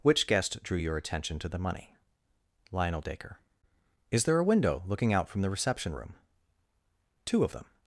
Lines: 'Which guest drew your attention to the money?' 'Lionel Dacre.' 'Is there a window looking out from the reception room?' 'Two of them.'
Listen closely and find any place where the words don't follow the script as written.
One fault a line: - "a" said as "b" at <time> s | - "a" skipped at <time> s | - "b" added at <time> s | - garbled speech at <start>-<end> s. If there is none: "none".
none